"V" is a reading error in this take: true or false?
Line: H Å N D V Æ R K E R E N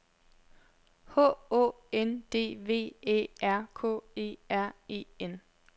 false